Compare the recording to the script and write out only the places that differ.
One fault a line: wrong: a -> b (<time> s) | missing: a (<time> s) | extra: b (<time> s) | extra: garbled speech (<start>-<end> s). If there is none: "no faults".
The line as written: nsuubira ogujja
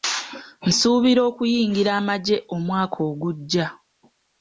extra: okuyingira amagye omwaka (1.3 s)